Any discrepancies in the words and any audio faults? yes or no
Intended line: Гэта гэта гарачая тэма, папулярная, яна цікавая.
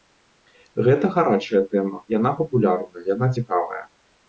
yes